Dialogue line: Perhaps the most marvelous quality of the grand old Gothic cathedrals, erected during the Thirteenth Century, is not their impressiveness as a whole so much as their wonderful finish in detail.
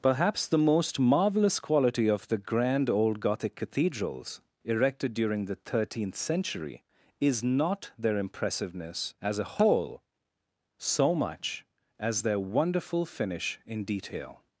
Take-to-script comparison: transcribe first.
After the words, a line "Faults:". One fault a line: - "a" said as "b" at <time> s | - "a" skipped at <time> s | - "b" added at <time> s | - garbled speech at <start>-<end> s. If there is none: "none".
Perhaps the most marvelous quality of the grand old Gothic cathedrals, erected during the Thirteenth Century, is not their impressiveness as a whole so much as their wonderful finish in detail.
Faults:
none